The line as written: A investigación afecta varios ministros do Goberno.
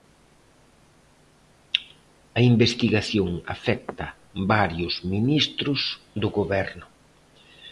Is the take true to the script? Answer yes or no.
yes